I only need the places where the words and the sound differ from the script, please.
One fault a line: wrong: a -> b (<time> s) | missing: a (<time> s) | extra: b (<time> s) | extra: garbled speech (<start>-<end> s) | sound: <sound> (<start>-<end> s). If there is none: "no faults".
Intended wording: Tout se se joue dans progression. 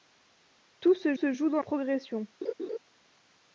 sound: laugh (2.4-2.8 s)